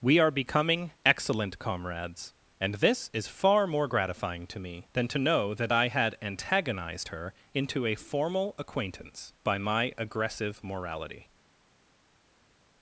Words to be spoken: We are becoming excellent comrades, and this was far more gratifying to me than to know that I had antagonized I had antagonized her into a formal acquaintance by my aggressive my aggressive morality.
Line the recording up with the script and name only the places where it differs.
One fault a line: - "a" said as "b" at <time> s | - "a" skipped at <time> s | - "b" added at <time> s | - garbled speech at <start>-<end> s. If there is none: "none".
- "was" said as "is" at 3.1 s
- "I had antagonized" skipped at 7.1 s
- "my aggressive" skipped at 10.6 s